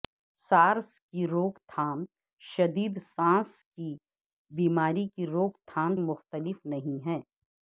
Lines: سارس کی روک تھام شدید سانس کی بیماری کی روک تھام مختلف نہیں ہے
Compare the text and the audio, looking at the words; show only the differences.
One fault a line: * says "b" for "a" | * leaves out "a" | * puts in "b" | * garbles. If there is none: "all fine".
all fine